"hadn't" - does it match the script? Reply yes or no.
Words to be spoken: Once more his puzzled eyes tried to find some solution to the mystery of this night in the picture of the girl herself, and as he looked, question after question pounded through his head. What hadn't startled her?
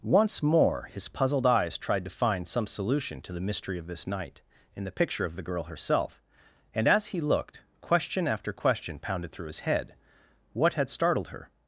no